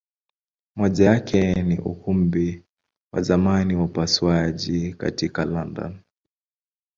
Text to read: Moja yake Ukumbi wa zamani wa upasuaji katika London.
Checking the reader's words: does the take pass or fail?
fail